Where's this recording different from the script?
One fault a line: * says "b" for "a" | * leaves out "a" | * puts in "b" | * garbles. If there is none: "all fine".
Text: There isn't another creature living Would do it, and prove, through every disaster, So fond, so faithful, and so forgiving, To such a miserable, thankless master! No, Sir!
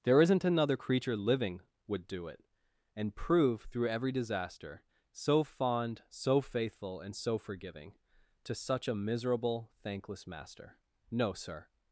all fine